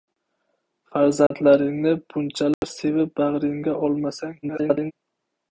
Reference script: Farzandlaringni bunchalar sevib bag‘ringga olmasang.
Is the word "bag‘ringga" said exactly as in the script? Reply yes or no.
yes